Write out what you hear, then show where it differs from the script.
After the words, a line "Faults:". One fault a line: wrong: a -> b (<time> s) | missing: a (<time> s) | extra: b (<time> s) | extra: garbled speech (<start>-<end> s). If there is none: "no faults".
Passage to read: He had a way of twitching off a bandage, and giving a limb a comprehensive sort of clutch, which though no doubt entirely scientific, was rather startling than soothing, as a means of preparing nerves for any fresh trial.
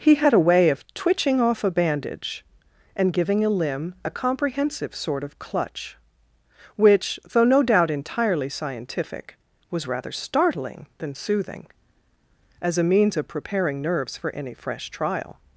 He had a way of twitching off a bandage, and giving a limb a comprehensive sort of clutch, which though no doubt entirely scientific, was rather startling than soothing, as a means of preparing nerves for any fresh trial.
Faults:
no faults